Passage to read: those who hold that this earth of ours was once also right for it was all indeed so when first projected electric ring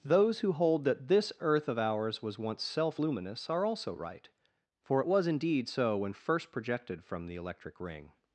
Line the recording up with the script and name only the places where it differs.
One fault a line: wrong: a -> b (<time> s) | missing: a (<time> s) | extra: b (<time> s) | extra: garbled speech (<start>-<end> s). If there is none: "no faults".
extra: self luminous are (2.6 s)
missing: all (5.3 s)
extra: from the (7.0 s)